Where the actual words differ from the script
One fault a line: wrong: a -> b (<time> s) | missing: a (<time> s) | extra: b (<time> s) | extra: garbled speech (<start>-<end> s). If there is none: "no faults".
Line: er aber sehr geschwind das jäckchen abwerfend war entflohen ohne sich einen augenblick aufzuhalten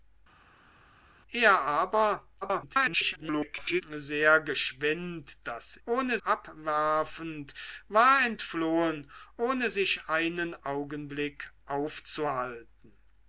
extra: garbled speech (2.4-3.8 s)
wrong: jäckchen -> ohne (5.8 s)